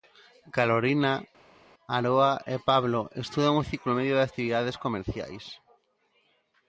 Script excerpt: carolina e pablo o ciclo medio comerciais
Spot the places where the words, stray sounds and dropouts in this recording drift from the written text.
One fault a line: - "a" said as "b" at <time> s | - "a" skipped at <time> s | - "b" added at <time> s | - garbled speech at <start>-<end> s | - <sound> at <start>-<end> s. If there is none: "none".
- "aroa" added at 2.0 s
- "estudan" added at 3.2 s
- "de actividades" added at 4.2 s